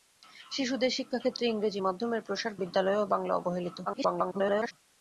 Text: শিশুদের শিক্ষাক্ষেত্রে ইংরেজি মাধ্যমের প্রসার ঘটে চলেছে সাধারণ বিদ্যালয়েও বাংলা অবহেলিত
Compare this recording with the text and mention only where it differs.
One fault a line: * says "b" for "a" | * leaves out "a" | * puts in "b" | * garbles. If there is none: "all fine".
* leaves out "ঘটে চলেছে সাধারণ"
* garbles